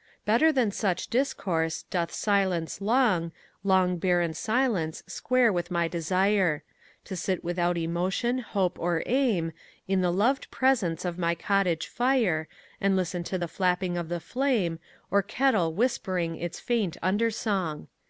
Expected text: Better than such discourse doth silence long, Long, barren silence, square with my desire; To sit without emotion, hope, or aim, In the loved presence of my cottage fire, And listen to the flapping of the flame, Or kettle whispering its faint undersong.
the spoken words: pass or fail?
pass